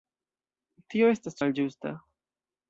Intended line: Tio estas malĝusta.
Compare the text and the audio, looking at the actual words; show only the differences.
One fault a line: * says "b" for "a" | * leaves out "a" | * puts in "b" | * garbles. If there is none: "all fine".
all fine